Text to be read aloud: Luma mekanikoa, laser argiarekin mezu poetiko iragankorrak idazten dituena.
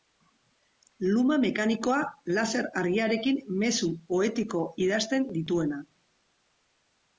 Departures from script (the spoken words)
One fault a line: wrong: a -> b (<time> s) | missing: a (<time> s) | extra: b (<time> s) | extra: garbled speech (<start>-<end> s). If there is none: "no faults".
missing: iragankorrak (4.6 s)